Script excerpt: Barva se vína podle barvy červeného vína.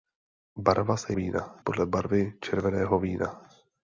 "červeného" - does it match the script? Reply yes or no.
yes